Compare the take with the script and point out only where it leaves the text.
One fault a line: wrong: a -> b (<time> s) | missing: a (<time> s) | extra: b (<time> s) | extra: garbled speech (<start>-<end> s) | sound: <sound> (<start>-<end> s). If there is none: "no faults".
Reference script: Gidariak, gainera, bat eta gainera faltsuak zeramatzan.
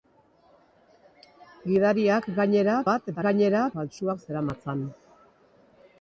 no faults